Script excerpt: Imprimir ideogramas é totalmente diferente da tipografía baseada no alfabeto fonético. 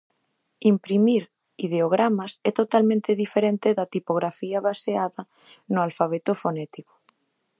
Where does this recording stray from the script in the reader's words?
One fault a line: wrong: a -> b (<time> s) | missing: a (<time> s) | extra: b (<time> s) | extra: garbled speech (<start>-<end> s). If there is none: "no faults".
no faults